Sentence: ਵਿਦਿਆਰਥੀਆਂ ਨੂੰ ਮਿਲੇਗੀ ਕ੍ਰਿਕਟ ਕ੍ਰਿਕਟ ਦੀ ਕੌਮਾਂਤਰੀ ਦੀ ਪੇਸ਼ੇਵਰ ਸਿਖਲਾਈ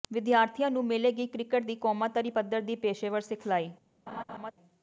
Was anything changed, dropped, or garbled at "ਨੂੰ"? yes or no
no